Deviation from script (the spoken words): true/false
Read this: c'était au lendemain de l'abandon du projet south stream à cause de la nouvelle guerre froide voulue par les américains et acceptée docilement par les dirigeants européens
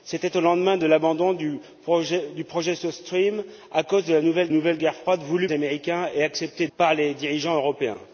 true